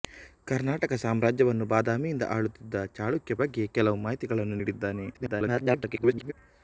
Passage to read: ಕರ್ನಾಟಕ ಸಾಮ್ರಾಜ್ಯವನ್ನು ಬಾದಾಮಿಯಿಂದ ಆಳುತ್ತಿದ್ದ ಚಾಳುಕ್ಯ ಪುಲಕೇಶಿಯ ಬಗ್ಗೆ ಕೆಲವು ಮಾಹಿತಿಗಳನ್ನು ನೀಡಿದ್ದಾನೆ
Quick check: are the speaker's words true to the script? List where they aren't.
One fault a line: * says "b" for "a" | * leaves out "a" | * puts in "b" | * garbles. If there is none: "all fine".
* leaves out "ಪುಲಕೇಶಿಯ"
* garbles